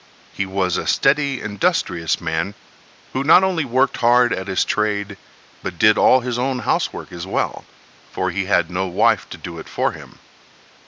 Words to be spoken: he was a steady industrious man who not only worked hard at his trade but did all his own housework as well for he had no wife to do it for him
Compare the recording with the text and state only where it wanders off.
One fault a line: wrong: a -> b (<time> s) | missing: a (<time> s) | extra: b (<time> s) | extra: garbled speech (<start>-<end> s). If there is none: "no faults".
no faults